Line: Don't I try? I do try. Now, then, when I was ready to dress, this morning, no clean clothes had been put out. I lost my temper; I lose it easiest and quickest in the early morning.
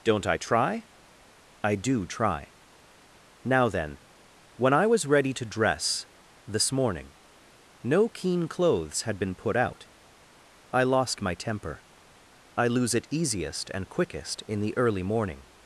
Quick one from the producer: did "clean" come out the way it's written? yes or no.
no